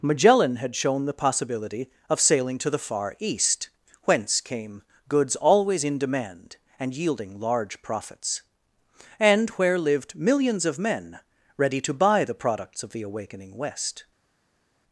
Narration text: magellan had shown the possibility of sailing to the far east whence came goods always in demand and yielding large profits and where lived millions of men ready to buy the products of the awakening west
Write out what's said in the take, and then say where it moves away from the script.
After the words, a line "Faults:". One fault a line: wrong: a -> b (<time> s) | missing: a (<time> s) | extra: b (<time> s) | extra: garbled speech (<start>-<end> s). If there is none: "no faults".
magellan had shown the possibility of sailing to the far east whence came goods always in demand and yielding large profits and where lived millions of men ready to buy the products of the awakening west
Faults:
no faults